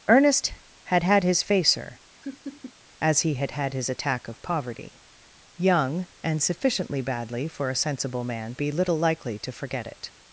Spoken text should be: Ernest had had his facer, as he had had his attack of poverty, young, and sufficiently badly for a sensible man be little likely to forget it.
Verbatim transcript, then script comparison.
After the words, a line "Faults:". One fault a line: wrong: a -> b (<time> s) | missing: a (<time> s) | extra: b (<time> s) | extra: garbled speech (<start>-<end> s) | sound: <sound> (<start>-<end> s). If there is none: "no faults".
Ernest had had his facer, as he had had his attack of poverty, young, and sufficiently badly for a sensible man be little likely to forget it.
Faults:
sound: laugh (2.2-2.7 s)